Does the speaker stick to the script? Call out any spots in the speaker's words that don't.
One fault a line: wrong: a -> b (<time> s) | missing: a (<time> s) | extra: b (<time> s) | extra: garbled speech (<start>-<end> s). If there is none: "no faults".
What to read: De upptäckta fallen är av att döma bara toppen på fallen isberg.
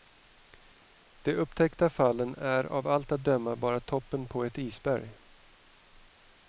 extra: allt (2.9 s)
wrong: fallen -> ett (4.4 s)